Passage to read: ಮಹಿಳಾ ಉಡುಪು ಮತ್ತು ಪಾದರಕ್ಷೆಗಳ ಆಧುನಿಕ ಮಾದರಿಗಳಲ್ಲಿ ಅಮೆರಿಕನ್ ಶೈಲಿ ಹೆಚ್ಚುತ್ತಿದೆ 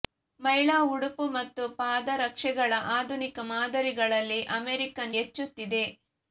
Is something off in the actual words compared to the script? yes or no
yes